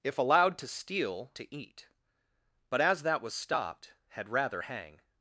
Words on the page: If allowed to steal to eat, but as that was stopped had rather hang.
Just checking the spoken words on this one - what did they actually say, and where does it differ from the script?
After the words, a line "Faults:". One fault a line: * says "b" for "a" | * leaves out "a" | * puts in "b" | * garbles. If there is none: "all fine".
If allowed to steal to eat, but as that was stopped had rather hang.
Faults:
all fine